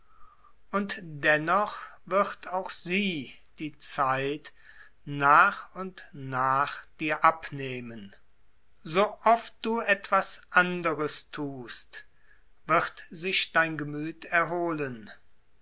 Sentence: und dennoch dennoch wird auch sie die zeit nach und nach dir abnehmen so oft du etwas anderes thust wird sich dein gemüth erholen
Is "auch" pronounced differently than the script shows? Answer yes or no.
no